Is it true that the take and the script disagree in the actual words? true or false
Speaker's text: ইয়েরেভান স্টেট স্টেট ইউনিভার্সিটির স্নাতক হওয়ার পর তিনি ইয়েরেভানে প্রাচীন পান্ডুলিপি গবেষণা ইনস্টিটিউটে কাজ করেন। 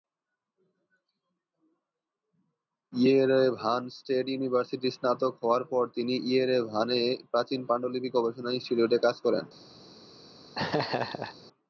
true